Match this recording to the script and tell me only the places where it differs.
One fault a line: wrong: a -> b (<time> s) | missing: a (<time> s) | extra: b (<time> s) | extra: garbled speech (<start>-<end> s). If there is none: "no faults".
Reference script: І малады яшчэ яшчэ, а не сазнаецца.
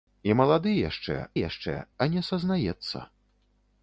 no faults